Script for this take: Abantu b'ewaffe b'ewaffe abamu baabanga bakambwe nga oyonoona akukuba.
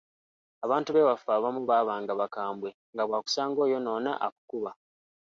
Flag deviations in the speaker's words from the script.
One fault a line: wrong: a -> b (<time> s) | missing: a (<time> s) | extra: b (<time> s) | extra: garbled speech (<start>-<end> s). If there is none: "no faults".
missing: b'ewaffe (1.3 s)
extra: bw'akusanga (3.1 s)